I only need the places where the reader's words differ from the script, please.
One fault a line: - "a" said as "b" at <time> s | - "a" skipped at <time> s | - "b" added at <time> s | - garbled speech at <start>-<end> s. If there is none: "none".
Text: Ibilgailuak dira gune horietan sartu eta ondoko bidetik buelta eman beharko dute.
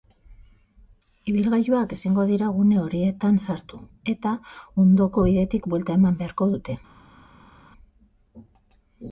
- "ezingo" added at 2.0 s